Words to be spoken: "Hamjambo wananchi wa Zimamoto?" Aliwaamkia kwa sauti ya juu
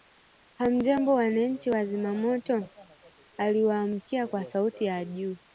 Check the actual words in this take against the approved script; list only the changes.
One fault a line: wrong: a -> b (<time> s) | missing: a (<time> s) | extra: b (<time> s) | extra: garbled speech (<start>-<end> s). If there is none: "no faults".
no faults